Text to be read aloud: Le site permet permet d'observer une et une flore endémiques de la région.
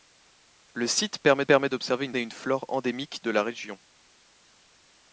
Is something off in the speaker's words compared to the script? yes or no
no